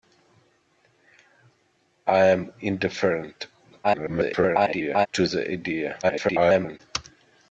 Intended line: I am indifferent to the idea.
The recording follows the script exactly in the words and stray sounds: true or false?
false